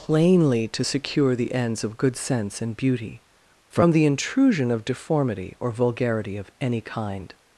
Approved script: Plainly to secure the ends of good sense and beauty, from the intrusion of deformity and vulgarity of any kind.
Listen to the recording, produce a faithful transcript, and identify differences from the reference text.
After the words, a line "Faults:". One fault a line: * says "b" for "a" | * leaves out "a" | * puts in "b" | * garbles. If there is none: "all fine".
Plainly to secure the ends of good sense and beauty, from the intrusion of deformity or vulgarity of any kind.
Faults:
* says "or" for "and"